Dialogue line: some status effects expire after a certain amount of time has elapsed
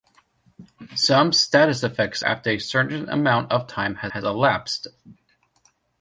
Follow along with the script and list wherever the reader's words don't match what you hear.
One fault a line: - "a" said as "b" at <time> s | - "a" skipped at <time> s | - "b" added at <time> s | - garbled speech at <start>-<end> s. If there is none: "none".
- "expire" skipped at 2.2 s
- "has" added at 4.1 s